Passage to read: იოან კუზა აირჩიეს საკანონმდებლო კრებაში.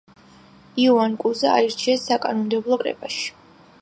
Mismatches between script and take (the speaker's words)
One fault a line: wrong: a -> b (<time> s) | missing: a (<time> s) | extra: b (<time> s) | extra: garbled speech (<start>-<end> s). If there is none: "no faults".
no faults